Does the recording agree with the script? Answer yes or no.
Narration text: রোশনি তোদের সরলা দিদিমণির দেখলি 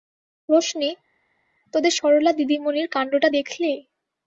no